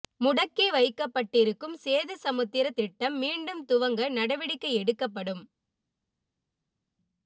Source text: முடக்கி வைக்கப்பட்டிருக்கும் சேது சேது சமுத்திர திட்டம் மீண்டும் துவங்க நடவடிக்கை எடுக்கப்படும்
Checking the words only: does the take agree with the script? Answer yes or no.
no